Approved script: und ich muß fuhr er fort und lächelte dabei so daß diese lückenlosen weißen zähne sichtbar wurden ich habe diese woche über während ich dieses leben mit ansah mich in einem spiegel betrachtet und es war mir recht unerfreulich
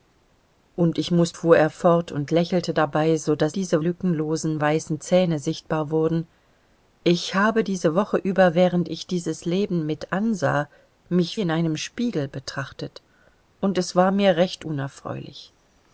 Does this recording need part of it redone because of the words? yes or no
no